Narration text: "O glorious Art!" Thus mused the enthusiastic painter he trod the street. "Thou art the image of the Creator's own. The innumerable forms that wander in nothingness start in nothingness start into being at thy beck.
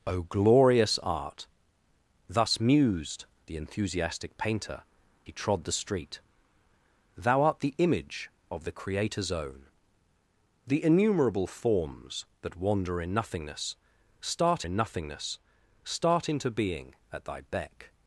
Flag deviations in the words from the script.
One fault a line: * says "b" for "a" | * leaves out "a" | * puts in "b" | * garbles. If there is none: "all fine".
all fine